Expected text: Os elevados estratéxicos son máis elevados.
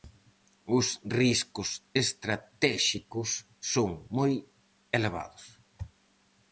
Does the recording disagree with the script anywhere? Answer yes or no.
yes